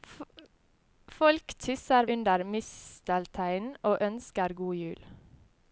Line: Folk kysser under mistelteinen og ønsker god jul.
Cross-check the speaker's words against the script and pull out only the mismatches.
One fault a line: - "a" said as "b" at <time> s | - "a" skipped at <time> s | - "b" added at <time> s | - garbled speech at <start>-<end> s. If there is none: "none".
none